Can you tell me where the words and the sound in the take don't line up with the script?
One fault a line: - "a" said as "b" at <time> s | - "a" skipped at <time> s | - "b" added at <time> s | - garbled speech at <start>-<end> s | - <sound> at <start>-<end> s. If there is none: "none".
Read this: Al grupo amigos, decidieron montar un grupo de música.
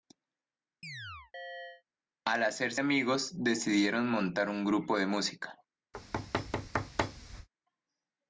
- chirp at 0.8-1.8 s
- "grupo" said as "hacerse" at 2.4 s
- thud at 5.9-7.5 s